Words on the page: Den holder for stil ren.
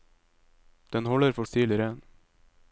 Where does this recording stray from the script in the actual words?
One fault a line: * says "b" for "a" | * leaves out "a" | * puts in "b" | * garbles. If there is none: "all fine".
all fine